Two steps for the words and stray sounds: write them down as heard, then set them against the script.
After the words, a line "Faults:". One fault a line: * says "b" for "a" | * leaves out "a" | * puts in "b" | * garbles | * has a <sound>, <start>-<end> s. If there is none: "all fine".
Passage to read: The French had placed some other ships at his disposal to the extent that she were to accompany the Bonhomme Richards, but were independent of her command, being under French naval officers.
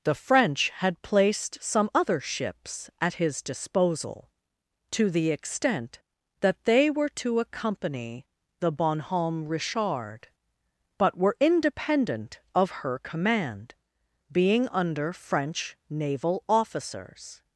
The French had placed some other ships at his disposal to the extent that they were to accompany the Bonhomme Richard, but were independent of her command, being under French naval officers.
Faults:
* says "they" for "she"
* says "Richard" for "Richards"